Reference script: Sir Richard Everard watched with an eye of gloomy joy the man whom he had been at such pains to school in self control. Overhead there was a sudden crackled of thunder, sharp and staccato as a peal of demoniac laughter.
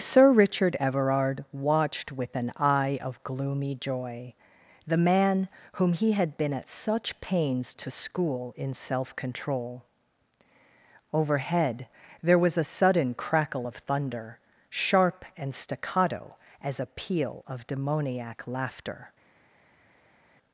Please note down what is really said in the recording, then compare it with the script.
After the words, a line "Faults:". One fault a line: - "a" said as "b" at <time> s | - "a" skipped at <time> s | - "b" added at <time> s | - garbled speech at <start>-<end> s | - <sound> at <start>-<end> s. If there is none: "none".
Sir Richard Everard watched with an eye of gloomy joy the man whom he had been at such pains to school in self control. Overhead there was a sudden crackle of thunder, sharp and staccato as a peal of demoniac laughter.
Faults:
- "crackled" said as "crackle" at 13.1 s